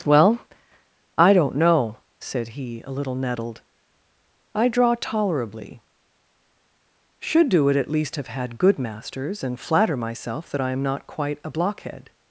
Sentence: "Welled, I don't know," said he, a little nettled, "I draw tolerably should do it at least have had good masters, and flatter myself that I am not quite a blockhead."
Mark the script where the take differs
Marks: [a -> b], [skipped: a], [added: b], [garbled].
["Welled, -> Well] I don't know," said he, a little nettled, "I draw tolerably should do it at least have had good masters, and flatter myself that I am not quite a blockhead."